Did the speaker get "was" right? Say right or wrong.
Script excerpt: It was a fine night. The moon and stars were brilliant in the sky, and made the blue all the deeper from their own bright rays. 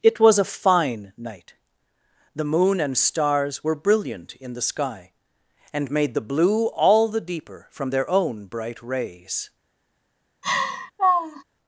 right